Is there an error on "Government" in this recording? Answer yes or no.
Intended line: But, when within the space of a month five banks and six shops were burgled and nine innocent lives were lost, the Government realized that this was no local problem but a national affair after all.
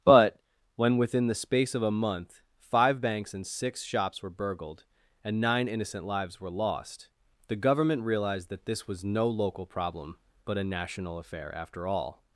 no